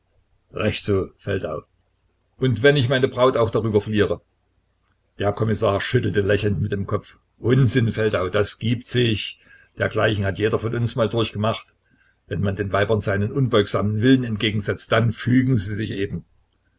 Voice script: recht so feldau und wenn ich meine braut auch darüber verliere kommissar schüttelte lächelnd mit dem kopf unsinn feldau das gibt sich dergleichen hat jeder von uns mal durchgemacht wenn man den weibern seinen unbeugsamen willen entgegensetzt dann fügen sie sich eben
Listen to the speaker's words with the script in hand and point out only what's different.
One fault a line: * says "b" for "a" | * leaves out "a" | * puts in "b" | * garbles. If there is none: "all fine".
* puts in "der"